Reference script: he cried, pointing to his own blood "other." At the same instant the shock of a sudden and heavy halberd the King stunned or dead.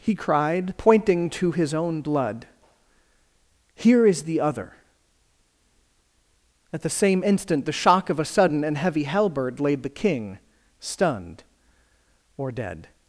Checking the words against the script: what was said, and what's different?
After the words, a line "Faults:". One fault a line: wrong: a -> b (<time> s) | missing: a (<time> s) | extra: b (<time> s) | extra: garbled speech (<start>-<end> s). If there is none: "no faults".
he cried, pointing to his own blood "here is the other." At the same instant the shock of a sudden and heavy halberd laid the King stunned or dead.
Faults:
extra: here is the (3.8 s)
extra: laid (9.6 s)